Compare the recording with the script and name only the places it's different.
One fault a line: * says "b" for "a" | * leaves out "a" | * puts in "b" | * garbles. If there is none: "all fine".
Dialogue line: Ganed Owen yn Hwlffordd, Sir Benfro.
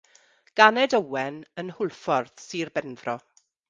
all fine